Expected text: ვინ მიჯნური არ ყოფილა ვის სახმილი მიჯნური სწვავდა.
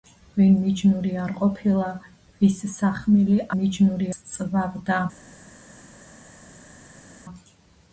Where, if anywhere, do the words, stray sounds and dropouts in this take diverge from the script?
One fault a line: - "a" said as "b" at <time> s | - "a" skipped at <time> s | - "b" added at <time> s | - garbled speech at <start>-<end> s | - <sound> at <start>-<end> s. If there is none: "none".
none